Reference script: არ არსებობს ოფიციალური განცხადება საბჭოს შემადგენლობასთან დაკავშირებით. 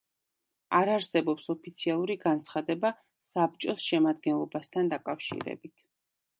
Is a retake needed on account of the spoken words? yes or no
no